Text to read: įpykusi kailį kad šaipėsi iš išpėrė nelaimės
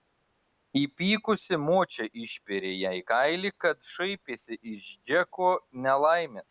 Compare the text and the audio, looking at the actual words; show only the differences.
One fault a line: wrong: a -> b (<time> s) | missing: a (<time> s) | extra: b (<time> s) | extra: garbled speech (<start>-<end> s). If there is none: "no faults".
extra: močia išpėrė jai (1.6 s)
wrong: išpėrė -> džeko (5.1 s)